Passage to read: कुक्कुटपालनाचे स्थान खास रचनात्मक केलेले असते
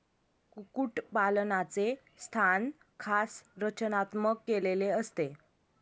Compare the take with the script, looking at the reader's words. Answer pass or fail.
pass